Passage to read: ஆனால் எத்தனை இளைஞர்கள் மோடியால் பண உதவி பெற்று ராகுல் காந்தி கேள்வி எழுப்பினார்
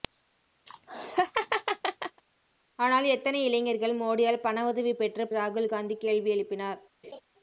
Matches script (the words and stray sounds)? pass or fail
fail